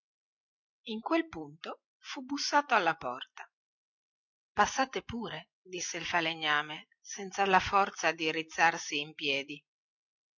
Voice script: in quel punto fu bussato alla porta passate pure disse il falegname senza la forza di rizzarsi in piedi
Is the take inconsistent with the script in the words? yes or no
no